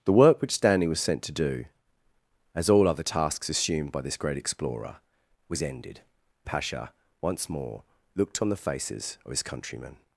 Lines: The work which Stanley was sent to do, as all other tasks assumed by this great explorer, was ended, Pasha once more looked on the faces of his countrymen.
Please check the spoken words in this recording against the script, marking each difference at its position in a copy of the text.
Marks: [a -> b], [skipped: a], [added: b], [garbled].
The work which Stanley was sent to do, as all other tasks assumed by this great explorer, was ended, Pasha once more looked on the faces of his countrymen.